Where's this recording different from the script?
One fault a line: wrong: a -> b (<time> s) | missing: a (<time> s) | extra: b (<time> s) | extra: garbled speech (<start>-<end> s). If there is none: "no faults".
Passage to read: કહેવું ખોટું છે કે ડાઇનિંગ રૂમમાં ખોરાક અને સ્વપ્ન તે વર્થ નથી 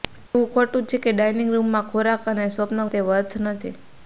no faults